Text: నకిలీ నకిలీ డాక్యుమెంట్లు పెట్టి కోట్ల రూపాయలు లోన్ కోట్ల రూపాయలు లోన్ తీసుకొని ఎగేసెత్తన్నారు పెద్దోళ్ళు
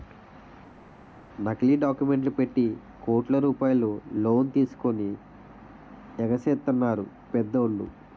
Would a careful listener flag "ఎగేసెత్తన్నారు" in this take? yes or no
no